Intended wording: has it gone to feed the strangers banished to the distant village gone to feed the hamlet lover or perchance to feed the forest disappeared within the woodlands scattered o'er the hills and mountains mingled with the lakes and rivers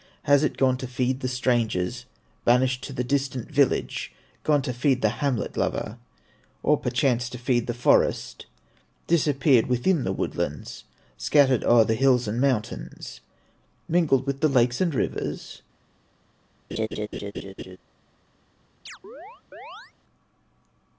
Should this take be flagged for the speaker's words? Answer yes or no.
no